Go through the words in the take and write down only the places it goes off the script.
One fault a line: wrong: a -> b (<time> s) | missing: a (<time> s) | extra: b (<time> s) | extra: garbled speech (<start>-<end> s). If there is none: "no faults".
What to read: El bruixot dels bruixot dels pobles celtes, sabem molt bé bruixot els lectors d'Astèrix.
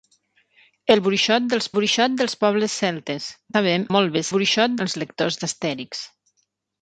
no faults